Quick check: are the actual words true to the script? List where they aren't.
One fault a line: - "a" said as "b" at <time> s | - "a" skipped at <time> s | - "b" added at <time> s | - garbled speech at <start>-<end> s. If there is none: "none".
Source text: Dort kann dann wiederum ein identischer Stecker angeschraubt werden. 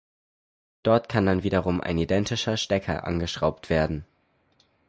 none